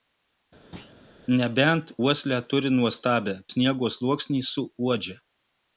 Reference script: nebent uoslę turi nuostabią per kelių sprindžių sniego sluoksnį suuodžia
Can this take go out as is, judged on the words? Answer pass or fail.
fail